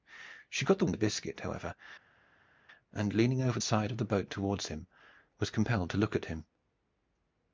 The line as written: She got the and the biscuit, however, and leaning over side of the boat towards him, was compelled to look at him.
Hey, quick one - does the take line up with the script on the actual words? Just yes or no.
yes